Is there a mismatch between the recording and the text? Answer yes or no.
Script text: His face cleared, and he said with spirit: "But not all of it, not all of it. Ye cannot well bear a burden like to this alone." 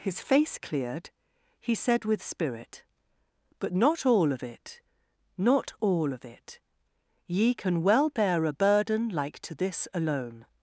yes